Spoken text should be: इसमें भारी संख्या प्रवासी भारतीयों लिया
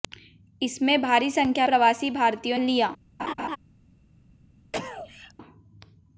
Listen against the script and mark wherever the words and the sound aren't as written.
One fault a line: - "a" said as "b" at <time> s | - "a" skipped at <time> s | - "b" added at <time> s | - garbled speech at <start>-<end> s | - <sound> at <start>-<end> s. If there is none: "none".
- laugh at 3.2-3.6 s
- cough at 4.7-5.3 s